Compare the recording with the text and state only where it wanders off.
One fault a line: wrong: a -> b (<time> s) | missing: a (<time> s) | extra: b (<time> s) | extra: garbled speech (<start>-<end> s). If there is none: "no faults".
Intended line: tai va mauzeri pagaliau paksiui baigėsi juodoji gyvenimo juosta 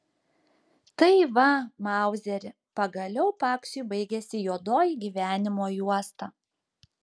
no faults